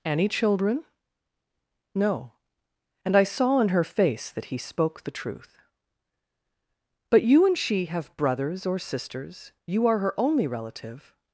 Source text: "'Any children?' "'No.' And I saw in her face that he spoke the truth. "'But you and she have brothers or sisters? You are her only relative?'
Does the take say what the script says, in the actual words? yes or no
yes